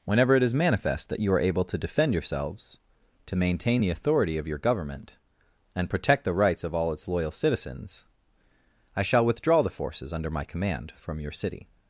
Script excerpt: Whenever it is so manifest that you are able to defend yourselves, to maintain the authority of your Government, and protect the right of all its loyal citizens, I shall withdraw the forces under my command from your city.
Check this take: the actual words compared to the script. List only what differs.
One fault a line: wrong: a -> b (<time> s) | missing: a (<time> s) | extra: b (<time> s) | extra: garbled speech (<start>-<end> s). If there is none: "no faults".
missing: so (0.5 s)
wrong: right -> rights (6.3 s)